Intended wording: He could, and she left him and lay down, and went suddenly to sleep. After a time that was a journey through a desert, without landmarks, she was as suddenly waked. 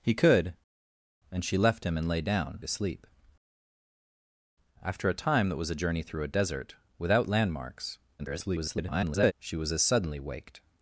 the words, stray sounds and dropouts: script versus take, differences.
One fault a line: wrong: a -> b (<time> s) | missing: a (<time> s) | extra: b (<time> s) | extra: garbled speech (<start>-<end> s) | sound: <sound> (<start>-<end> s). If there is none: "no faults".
missing: and went suddenly (2.6 s)
extra: garbled speech (8.2-9.3 s)